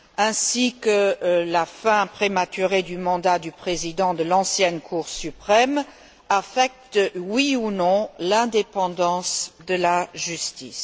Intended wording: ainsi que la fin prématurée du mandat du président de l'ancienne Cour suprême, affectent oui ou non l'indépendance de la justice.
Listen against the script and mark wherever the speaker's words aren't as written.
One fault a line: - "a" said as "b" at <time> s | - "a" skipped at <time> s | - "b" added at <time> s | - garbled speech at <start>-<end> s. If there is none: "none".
none